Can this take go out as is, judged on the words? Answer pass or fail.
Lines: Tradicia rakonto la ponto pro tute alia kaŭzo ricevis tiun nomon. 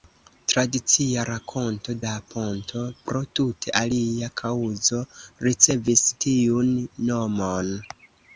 pass